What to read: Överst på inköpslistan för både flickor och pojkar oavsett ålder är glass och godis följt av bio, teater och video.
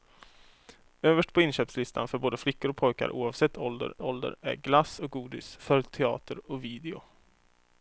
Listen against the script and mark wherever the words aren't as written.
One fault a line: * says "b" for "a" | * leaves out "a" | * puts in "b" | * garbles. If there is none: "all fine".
* puts in "ålder"
* leaves out "av bio"